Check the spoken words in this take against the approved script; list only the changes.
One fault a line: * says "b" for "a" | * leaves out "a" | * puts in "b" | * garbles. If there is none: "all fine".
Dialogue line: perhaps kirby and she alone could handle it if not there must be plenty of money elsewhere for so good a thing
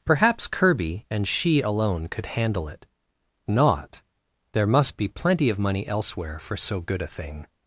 * leaves out "if"